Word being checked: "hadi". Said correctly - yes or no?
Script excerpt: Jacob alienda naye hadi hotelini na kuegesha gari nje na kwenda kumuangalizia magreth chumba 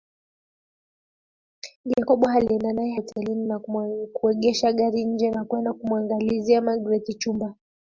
no